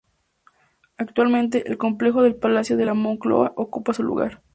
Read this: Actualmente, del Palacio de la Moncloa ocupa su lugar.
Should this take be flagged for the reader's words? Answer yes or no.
yes